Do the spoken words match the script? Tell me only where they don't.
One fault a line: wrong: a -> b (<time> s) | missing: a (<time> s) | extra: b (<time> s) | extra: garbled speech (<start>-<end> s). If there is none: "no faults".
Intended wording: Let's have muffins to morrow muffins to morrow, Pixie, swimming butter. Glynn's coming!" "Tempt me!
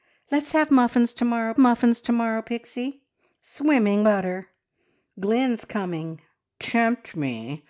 no faults